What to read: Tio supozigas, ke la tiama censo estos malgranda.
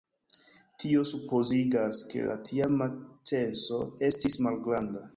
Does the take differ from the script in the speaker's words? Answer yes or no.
yes